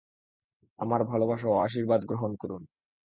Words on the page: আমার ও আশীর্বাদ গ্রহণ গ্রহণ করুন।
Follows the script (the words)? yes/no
no